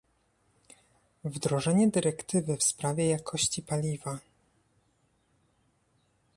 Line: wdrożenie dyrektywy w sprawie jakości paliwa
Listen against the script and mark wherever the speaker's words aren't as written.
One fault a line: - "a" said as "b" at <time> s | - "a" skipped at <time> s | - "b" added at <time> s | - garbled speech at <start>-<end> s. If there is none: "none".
none